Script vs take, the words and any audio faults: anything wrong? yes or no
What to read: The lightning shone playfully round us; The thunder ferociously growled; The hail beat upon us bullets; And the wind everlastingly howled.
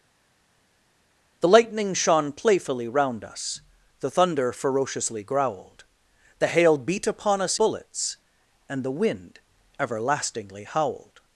no